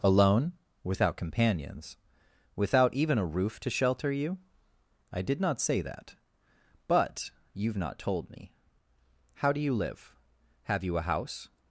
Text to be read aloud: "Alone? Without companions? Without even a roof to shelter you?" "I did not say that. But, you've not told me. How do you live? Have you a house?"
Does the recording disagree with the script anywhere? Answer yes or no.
no